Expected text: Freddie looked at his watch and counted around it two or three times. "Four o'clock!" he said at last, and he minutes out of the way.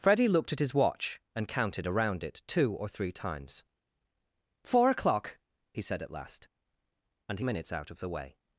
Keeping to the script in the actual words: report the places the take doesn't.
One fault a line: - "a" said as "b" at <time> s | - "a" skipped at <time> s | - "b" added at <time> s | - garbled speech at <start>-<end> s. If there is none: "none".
none